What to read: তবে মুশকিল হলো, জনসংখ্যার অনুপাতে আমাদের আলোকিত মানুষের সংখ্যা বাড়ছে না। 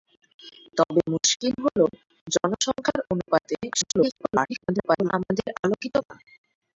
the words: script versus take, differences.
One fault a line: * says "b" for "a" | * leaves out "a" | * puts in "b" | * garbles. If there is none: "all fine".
* garbles
* leaves out "মানুষের সংখ্যা বাড়ছে"